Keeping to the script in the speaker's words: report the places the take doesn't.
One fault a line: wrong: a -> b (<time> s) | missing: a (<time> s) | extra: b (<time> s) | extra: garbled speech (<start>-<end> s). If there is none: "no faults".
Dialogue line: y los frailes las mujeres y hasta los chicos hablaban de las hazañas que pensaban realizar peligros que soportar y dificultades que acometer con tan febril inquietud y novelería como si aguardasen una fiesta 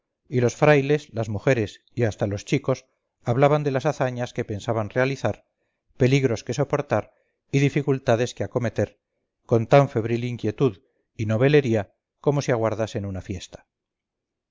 no faults